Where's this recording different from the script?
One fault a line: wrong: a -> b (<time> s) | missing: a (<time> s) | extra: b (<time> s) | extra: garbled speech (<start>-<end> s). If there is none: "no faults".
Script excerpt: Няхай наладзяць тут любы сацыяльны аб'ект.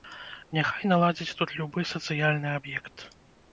no faults